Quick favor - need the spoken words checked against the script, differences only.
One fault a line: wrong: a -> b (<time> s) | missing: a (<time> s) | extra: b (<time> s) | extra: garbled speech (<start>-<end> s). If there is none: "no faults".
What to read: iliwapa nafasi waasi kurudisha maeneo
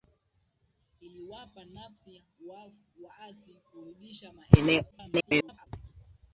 extra: garbled speech (4.9-5.7 s)